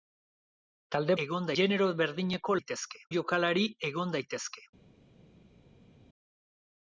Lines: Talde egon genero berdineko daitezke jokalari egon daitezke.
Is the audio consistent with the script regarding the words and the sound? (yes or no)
yes